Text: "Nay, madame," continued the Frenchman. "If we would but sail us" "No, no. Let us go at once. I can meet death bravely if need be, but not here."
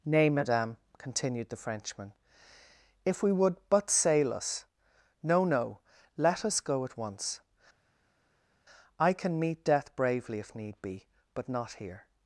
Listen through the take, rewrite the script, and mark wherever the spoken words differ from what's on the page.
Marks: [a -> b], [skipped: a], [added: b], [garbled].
"Nay, madame," continued the Frenchman. "If we would but sail us" "No, no. Let us go at once. I can meet death bravely if need be, but not here."